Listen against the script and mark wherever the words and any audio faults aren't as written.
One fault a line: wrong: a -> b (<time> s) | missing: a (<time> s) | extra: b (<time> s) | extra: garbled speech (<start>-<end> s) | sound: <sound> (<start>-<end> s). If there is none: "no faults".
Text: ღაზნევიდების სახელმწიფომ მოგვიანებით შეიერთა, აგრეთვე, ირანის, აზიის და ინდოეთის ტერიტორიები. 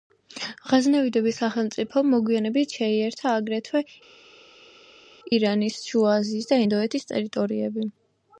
extra: შუა (5.9 s)